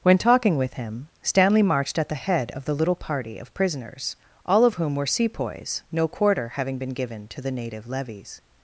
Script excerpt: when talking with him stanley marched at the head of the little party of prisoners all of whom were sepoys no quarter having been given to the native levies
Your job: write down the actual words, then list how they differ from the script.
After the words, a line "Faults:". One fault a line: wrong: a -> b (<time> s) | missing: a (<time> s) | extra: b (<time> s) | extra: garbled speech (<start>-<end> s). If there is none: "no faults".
when talking with him stanley marched at the head of the little party of prisoners all of whom were sepoys no quarter having been given to the native levies
Faults:
no faults